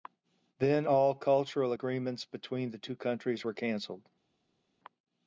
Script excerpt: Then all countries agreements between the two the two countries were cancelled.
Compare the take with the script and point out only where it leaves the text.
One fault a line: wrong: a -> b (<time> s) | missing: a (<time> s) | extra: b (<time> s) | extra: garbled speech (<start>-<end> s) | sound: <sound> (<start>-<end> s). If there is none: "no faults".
wrong: countries -> cultural (1.1 s)
missing: the two (3.0 s)